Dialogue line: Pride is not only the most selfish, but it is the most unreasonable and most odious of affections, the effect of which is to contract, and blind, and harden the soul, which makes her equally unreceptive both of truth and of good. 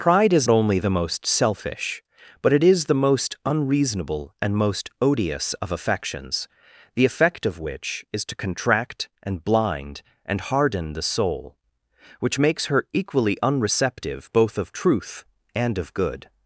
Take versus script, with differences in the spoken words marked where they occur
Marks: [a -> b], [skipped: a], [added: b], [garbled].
Pride is [skipped: not] only the most selfish, but it is the most unreasonable and most odious of affections, the effect of which is to contract, and blind, and harden the soul, which makes her equally unreceptive both of truth and of good.